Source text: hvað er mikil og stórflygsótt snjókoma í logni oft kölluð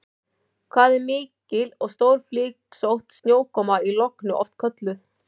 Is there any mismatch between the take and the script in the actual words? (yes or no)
no